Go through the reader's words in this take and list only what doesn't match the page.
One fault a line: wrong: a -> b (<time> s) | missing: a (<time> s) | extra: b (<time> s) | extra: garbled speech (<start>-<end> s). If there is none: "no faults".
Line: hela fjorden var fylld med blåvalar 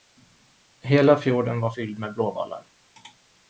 no faults